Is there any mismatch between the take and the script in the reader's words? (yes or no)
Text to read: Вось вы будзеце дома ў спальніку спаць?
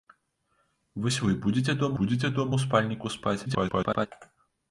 yes